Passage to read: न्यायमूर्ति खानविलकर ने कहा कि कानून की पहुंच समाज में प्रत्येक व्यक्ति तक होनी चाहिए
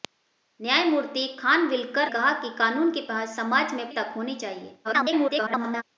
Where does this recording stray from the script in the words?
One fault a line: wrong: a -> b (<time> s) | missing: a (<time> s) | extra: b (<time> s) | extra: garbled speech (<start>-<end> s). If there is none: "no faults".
missing: ने (2.1 s)
missing: प्रत्येक व्यक्ति (3.9 s)
extra: garbled speech (4.8-5.8 s)